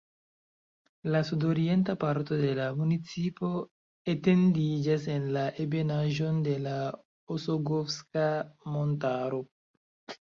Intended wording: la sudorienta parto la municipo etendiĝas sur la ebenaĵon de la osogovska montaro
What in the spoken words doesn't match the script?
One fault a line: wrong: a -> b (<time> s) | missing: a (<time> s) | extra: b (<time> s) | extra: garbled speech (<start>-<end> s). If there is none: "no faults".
extra: de (2.4 s)
wrong: sur -> en (5.2 s)